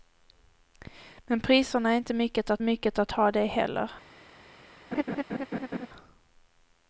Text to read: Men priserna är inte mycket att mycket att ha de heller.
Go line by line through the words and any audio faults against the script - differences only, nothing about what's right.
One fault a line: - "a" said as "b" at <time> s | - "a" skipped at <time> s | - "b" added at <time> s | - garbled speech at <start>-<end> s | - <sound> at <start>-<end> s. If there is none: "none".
- laugh at 4.9-5.9 s